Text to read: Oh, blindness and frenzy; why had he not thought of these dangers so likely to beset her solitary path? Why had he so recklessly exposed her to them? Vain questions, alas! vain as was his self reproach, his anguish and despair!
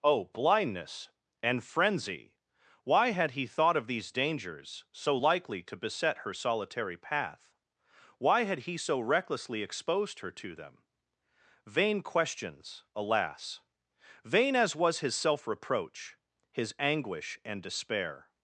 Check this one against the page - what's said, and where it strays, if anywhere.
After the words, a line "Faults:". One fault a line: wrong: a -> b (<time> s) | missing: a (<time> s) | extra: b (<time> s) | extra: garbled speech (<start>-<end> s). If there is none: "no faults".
Oh, blindness and frenzy; why had he thought of these dangers so likely to beset her solitary path? Why had he so recklessly exposed her to them? Vain questions, alas! vain as was his self reproach, his anguish and despair!
Faults:
missing: not (3.4 s)